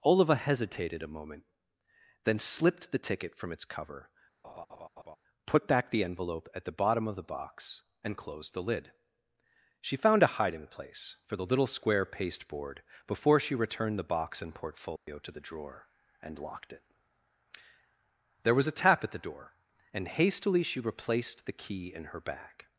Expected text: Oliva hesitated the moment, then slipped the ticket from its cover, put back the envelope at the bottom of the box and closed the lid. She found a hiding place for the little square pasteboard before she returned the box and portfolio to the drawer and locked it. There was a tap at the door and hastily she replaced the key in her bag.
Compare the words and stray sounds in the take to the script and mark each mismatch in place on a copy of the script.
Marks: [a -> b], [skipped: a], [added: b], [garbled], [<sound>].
Oliva hesitated [the -> a] moment, then slipped the ticket from its cover, [laugh] put back the envelope at the bottom of the box and closed the lid. She found a hiding place for the little square pasteboard before she returned the box and portfolio [dropout] to the drawer and locked it. There was a tap at the door and hastily she replaced the key in her bag.